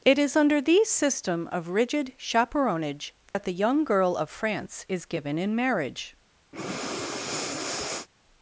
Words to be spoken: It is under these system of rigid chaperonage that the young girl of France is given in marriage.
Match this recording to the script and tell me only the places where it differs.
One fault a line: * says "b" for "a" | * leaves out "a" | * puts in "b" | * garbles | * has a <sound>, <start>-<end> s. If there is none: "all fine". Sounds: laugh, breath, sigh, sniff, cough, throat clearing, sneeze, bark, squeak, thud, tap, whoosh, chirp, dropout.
* has a dropout, 3.3-3.3 s
* has a breath, 6.5-8.1 s